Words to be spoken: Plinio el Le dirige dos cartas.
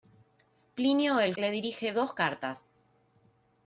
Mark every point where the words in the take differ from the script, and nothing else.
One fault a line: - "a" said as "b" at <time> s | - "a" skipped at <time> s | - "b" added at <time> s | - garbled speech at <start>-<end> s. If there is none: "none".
none